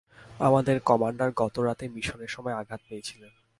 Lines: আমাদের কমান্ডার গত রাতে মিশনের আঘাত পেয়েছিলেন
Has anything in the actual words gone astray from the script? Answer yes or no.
yes